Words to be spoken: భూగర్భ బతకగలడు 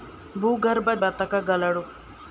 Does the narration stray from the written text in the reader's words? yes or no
no